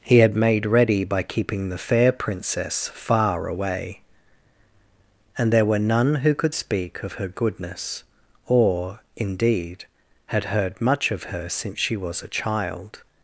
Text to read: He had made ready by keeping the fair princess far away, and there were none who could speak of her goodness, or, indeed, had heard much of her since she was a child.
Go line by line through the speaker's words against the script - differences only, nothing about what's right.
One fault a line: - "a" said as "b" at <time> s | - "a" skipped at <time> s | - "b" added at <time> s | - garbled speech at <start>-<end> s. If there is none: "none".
none